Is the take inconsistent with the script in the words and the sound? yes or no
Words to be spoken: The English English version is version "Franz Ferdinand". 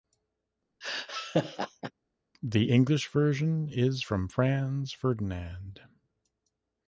yes